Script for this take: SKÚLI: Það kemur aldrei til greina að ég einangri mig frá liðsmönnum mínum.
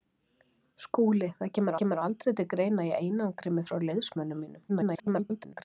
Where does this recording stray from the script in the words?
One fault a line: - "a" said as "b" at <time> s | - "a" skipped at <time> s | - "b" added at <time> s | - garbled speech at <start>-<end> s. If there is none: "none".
- "kemur" added at 1.8 s
- garbled speech at 4.7-5.6 s